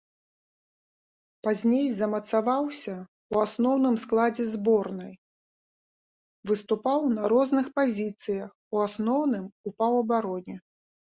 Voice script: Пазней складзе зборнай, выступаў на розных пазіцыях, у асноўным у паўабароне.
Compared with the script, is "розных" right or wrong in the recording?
right